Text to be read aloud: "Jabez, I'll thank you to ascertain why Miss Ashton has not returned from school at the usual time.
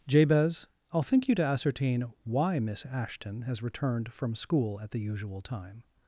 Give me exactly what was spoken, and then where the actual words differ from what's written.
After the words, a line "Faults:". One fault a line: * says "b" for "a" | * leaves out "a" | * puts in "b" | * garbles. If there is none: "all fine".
"Jabez, I'll think you to ascertain why Miss Ashton has returned from school at the usual time.
Faults:
* says "think" for "thank"
* leaves out "not"